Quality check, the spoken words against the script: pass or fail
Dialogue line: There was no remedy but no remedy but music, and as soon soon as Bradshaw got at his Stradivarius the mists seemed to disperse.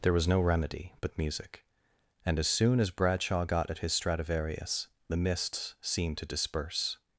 fail